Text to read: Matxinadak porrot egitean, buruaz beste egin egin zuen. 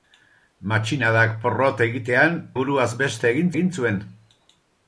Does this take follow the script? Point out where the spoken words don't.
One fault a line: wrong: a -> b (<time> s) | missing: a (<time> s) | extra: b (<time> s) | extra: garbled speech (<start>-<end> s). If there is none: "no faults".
no faults